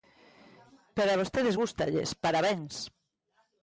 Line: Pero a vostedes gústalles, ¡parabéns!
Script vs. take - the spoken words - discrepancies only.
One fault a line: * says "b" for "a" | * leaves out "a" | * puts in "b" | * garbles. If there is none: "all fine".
all fine